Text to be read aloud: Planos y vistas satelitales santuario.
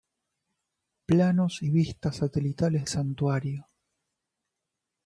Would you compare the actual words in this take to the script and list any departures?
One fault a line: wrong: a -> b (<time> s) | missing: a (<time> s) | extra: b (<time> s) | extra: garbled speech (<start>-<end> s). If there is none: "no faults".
no faults